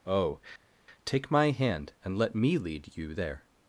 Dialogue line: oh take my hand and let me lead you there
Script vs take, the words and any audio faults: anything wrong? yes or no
no